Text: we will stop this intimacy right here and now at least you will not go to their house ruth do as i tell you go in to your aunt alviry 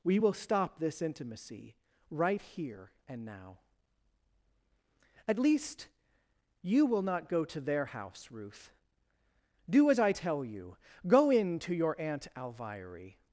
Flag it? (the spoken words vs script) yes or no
no